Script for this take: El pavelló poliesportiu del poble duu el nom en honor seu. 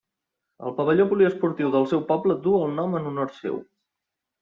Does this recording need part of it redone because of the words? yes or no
yes